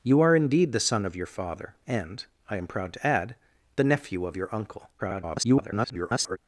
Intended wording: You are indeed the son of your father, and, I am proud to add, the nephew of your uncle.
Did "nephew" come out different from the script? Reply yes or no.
no